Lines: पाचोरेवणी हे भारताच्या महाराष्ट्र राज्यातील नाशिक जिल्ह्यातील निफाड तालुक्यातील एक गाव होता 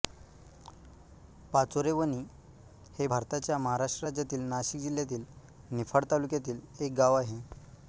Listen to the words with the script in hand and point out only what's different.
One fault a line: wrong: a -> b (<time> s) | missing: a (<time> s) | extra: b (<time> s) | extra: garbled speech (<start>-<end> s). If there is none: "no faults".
wrong: होता -> आहे (7.2 s)